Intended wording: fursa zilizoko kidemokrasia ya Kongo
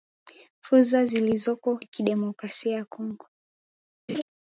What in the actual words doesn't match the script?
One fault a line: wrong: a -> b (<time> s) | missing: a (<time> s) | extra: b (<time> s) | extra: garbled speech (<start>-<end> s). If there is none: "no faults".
no faults